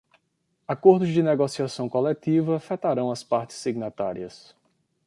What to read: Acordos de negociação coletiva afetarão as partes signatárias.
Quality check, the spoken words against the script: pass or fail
pass